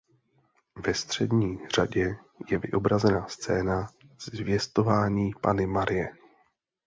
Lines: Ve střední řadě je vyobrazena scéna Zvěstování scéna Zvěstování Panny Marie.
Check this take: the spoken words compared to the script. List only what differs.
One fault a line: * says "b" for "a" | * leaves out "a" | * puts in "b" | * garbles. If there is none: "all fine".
* leaves out "scéna Zvěstování"